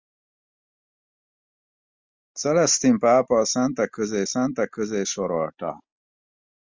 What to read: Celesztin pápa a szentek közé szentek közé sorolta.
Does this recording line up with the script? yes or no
yes